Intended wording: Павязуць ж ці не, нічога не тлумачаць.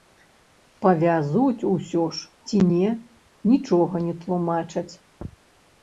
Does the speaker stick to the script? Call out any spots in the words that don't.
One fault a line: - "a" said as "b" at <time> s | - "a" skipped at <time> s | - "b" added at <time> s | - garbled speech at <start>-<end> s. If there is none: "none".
- "усё" added at 1.7 s